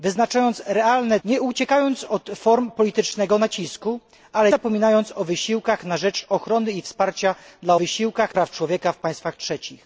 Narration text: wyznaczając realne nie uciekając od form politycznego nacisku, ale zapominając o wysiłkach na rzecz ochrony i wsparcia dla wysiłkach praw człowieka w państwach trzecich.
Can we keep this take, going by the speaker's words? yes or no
yes